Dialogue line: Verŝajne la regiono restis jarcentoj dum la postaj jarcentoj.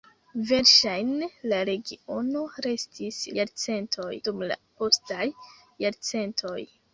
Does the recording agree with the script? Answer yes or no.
yes